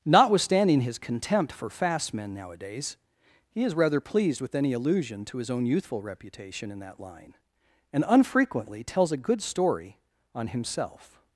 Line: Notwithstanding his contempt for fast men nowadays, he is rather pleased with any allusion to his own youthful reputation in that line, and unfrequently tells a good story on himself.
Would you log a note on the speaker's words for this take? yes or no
no